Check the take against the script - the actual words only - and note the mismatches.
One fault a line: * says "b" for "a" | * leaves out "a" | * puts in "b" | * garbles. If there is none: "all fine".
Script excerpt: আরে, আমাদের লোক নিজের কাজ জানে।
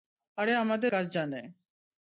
* leaves out "লোক নিজের"